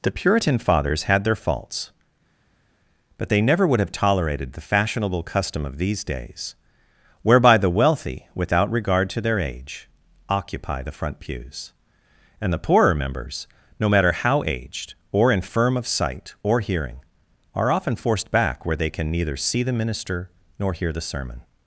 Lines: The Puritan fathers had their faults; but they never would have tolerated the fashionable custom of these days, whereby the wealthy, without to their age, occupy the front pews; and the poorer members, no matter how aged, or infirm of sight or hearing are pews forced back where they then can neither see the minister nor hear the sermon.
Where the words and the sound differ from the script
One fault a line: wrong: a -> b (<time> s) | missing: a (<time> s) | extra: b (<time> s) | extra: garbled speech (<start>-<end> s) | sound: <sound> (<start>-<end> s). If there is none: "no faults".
extra: regard (8.7 s)
wrong: pews -> often (17.7 s)
missing: then (18.9 s)